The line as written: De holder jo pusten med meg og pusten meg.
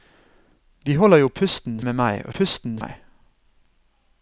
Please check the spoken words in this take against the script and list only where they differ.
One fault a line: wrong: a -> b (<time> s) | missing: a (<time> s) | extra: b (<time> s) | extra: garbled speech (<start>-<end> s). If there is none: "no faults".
no faults